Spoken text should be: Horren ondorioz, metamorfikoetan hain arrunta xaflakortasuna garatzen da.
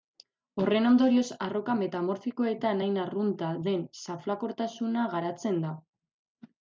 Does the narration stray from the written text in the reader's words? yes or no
yes